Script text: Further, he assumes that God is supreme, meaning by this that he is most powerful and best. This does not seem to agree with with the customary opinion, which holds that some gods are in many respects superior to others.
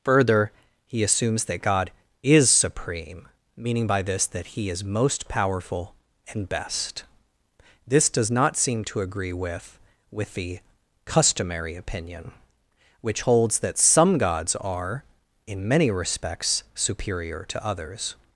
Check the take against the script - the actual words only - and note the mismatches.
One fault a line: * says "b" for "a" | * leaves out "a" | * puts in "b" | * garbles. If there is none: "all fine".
all fine